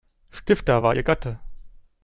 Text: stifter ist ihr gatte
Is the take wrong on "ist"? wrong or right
wrong